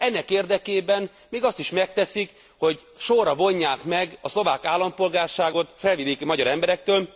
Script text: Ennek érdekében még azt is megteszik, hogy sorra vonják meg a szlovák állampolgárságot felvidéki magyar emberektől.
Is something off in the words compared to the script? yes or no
no